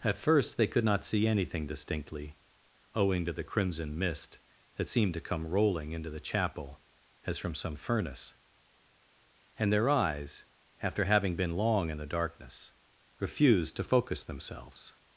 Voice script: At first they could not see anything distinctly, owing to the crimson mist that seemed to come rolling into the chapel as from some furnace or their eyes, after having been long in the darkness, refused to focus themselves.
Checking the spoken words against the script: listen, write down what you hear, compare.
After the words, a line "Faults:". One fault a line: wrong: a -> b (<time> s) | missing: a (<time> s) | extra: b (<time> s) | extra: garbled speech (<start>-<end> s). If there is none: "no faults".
At first they could not see anything distinctly, owing to the crimson mist that seemed to come rolling into the chapel as from some furnace and their eyes, after having been long in the darkness, refused to focus themselves.
Faults:
wrong: or -> and (9.6 s)